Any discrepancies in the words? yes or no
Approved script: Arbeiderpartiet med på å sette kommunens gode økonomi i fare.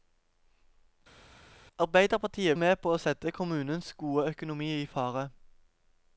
no